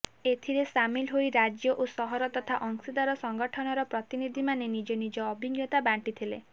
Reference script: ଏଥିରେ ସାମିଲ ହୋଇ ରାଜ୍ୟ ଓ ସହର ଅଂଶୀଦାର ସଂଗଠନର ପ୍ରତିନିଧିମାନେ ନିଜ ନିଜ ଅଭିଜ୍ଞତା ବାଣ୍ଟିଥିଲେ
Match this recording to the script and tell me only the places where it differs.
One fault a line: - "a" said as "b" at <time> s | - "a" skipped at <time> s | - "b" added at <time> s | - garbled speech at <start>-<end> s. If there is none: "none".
- "ତଥା" added at 2.3 s